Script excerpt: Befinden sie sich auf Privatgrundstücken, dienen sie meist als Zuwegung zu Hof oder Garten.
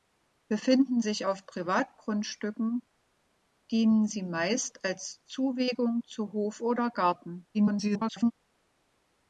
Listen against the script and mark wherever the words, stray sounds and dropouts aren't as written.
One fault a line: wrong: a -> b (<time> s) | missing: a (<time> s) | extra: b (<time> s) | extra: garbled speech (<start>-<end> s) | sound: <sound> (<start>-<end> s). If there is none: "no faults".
missing: sie (1.0 s)
extra: garbled speech (7.5-8.3 s)